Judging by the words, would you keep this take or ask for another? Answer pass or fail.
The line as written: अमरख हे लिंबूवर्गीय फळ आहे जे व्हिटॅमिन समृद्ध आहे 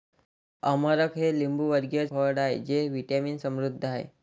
pass